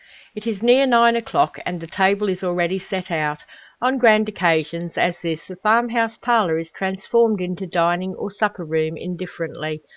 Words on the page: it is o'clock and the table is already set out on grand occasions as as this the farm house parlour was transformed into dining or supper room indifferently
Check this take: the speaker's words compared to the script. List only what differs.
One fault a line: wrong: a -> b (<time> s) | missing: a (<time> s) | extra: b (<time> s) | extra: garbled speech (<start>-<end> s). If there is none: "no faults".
extra: near nine (0.6 s)
missing: as (5.1 s)
wrong: was -> is (6.6 s)